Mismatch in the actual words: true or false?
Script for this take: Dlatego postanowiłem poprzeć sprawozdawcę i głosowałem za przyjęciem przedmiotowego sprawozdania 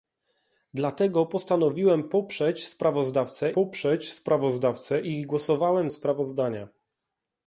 true